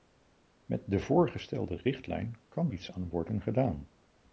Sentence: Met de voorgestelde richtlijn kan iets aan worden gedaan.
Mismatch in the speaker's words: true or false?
false